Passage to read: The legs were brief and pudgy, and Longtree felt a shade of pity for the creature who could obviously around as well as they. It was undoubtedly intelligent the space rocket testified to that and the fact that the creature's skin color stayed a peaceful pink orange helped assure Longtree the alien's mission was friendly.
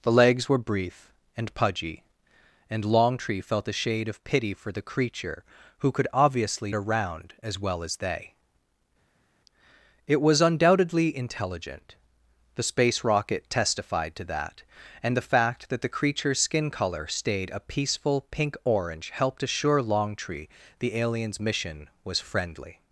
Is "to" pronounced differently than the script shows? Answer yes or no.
no